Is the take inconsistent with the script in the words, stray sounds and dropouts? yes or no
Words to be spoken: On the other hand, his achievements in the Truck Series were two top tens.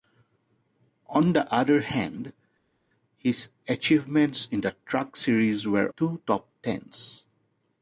no